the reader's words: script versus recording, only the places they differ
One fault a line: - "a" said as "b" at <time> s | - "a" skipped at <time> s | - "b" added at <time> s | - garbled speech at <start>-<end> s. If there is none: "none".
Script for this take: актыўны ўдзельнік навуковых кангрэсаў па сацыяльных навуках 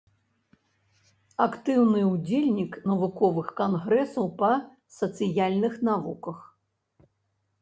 none